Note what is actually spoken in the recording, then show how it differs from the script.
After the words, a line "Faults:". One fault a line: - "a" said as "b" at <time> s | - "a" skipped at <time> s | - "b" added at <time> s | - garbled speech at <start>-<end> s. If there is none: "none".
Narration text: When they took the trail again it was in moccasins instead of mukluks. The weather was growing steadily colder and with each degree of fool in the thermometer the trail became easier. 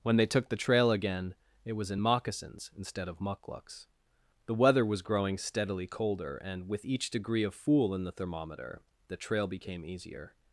When they took the trail again it was in moccasins instead of mukluks. The weather was growing steadily colder and with each degree of fool in the thermometer the trail became easier.
Faults:
none